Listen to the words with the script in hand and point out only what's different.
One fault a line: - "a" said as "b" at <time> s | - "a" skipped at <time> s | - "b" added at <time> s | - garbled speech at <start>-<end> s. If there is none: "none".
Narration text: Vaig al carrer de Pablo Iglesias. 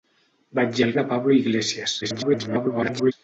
- "carrer" skipped at 0.9 s
- garbled speech at 2.0-3.1 s